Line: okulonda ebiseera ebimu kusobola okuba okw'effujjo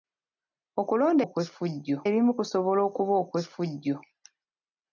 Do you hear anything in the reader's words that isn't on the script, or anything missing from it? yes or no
yes